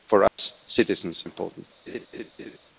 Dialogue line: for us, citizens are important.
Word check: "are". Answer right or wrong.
wrong